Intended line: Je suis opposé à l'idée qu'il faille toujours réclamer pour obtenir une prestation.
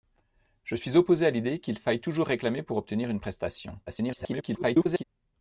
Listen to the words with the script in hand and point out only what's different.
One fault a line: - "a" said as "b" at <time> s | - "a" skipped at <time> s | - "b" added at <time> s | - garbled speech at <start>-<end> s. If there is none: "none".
- garbled speech at 3.9-5.0 s